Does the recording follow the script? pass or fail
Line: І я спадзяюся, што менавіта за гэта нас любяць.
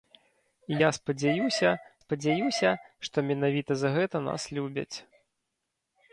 fail